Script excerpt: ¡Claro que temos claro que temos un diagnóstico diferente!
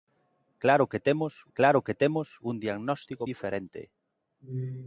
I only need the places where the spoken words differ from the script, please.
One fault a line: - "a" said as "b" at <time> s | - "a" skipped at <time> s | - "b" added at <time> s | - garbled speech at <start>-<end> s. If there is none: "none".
none